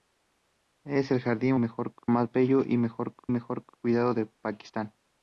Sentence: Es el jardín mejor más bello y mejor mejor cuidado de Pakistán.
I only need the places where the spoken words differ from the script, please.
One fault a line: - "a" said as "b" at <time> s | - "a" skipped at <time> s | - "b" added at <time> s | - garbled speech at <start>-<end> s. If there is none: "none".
none